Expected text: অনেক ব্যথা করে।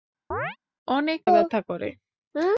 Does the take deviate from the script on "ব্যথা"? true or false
false